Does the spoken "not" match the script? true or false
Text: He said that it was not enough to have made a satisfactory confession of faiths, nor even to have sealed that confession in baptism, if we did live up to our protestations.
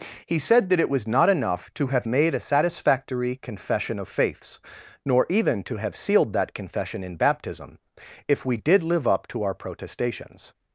true